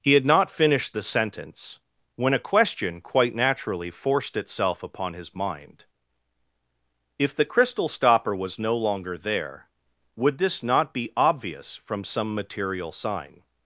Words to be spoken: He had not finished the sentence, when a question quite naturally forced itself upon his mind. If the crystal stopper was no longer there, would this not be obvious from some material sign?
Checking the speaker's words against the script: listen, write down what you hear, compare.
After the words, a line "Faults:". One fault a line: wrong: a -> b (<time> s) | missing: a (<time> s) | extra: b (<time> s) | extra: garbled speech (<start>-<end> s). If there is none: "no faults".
He had not finished the sentence, when a question quite naturally forced itself upon his mind. If the crystal stopper was no longer there, would this not be obvious from some material sign?
Faults:
no faults